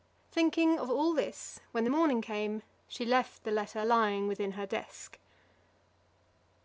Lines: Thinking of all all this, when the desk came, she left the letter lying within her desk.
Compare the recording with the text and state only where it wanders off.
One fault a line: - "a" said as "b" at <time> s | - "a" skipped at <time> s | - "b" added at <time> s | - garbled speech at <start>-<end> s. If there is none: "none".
- "all" skipped at 1.1 s
- "desk" said as "morning" at 1.9 s